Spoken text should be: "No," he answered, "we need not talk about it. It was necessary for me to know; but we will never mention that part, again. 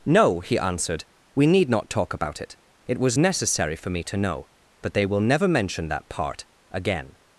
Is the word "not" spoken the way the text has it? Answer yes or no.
yes